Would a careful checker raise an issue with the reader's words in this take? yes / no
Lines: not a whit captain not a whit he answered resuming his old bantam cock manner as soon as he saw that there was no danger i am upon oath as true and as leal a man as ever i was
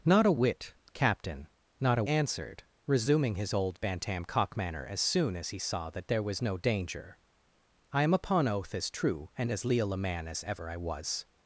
yes